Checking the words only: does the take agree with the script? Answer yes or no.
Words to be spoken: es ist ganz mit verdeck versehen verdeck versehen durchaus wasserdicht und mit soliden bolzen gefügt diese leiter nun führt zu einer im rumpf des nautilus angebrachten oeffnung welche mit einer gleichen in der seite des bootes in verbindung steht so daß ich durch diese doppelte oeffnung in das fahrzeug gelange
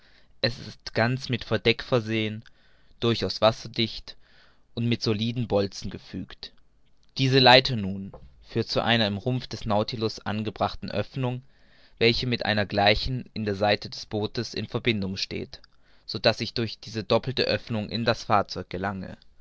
no